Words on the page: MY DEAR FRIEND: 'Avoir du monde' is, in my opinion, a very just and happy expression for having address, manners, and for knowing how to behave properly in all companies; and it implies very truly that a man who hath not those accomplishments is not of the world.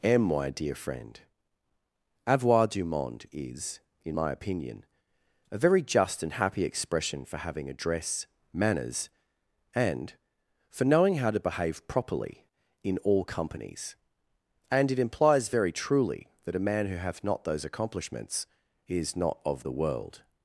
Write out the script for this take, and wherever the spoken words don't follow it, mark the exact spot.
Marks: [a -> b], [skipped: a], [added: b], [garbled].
[added: am] MY DEAR FRIEND: 'Avoir du monde' is, in my opinion, a very just and happy expression for having address, manners, and for knowing how to behave properly in all companies; and it implies very truly that a man who hath not those accomplishments is not of the world.